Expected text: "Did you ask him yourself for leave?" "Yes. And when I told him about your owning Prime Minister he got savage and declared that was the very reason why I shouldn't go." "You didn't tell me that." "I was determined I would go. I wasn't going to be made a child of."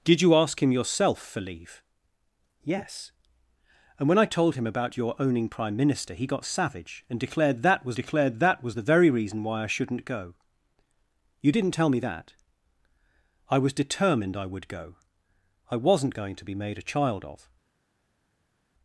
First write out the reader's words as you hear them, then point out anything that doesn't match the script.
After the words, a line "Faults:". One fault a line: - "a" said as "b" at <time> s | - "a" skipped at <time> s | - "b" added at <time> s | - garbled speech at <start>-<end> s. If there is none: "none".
"Did you ask him yourself for leave?" "Yes. And when I told him about your owning Prime Minister he got savage and declared that was declared that was the very reason why I shouldn't go." "You didn't tell me that." "I was determined I would go. I wasn't going to be made a child of."
Faults:
- "declared that was" added at 7.9 s